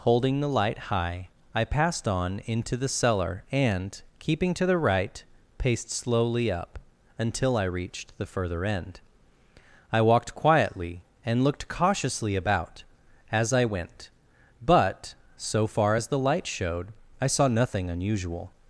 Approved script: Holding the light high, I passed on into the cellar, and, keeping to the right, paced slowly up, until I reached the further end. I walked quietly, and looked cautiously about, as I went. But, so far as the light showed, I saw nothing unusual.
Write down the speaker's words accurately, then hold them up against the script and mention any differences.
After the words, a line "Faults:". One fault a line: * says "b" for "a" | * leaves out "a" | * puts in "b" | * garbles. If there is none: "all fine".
Holding the light high, I passed on into the cellar, and, keeping to the right, paced slowly up, until I reached the further end. I walked quietly, and looked cautiously about, as I went. But, so far as the light showed, I saw nothing unusual.
Faults:
all fine